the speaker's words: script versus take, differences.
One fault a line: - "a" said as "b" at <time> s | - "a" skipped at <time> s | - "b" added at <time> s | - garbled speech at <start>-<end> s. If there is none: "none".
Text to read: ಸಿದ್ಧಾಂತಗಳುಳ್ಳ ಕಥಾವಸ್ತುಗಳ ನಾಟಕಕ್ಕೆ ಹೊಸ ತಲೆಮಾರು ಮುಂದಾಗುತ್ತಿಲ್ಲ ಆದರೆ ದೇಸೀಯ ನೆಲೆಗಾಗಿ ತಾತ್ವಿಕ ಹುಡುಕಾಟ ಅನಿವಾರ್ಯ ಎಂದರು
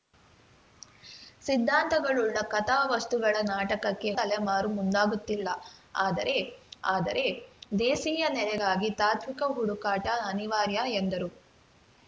- "ಹೊಸ" skipped at 4.1 s
- "ಆದರೆ" added at 6.9 s